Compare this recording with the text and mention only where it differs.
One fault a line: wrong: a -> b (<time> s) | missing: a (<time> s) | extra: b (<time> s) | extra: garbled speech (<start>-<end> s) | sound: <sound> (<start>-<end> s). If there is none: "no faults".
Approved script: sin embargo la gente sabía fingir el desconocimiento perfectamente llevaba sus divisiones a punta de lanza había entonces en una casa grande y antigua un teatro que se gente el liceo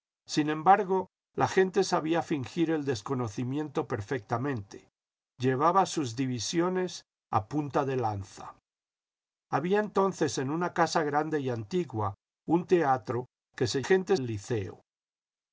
no faults